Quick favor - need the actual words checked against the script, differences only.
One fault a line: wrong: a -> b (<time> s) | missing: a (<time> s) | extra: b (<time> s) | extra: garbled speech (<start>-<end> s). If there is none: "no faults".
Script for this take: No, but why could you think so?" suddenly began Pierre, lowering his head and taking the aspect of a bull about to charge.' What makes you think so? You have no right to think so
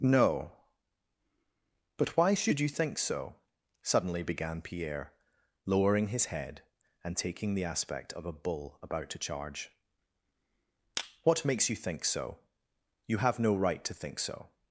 wrong: could -> should (2.3 s)